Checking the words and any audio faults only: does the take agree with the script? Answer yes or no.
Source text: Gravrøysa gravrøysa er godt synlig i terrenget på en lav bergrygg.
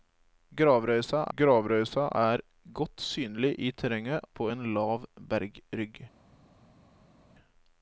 yes